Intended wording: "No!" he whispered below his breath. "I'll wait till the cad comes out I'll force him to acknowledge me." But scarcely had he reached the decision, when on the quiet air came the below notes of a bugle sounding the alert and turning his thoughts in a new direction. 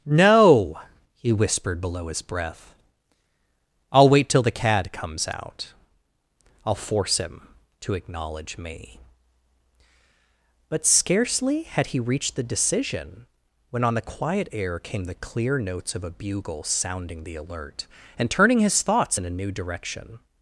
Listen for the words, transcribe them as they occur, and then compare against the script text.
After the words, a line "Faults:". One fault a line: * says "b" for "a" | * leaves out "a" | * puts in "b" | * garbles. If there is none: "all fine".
"No!" he whispered below his breath. "I'll wait till the cad comes out I'll force him to acknowledge me." But scarcely had he reached the decision, when on the quiet air came the clear notes of a bugle sounding the alert and turning his thoughts in a new direction.
Faults:
* says "clear" for "below"